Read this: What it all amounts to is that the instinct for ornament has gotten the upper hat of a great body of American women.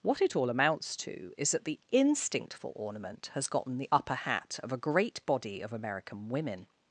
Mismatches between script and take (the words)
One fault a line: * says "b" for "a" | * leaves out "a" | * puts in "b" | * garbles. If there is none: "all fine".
all fine